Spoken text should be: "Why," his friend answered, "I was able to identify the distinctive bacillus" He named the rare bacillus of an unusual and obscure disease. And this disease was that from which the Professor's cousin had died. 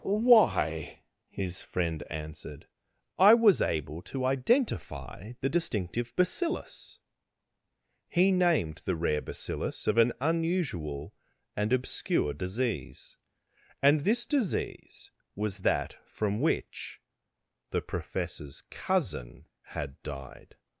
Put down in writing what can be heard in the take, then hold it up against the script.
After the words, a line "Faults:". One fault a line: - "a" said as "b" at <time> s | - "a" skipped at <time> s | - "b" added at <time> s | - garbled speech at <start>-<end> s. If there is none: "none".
"Why," his friend answered, "I was able to identify the distinctive bacillus" He named the rare bacillus of an unusual and obscure disease. And this disease was that from which the Professor's cousin had died.
Faults:
none